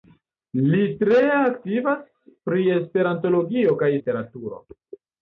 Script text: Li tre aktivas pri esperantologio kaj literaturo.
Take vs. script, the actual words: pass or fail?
pass